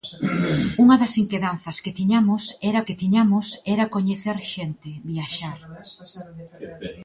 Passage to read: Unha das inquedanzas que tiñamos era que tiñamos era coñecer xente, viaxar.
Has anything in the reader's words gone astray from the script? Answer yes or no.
no